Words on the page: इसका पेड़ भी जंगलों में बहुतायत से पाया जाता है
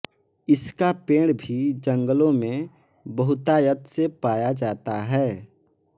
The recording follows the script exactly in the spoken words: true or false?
true